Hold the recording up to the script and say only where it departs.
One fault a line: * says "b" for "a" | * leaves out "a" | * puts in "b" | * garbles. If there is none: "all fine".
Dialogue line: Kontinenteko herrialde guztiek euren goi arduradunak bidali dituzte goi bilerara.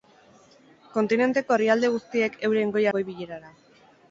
* leaves out "arduradunak bidali dituzte"